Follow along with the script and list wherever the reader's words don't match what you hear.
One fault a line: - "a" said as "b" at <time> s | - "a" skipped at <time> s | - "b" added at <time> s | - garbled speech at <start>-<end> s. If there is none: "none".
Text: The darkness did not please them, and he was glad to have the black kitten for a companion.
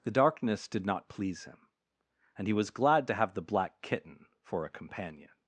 - "them" said as "him" at 1.4 s